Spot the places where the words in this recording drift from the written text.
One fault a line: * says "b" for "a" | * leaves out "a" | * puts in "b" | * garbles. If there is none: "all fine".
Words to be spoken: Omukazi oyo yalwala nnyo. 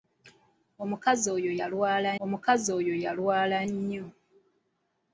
* puts in "omukazi oyo yalwala"